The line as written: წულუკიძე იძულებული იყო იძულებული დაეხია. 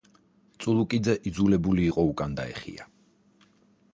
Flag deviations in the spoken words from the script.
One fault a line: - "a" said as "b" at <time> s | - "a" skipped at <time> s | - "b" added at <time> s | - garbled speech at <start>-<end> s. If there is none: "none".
- "იძულებული" said as "უკან" at 2.1 s